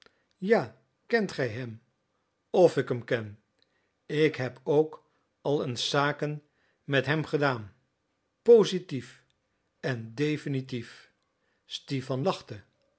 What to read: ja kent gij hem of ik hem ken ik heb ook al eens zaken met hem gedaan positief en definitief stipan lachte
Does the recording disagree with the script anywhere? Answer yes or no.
no